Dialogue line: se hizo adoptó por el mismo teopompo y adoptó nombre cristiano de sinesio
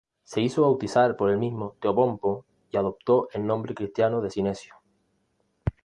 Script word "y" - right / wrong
right